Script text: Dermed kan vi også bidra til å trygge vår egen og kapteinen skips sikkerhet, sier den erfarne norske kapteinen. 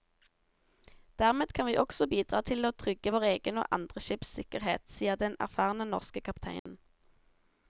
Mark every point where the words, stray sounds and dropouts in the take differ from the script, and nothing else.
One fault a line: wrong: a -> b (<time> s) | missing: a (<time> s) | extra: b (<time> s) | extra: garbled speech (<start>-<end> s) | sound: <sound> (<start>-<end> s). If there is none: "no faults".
wrong: kapteinen -> andre (3.8 s)
sound: dropout (6.6-6.7 s)